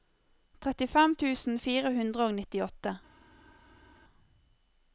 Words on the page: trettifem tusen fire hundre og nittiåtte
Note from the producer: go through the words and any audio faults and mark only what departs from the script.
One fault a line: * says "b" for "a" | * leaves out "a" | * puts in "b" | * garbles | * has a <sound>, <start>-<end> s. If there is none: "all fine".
all fine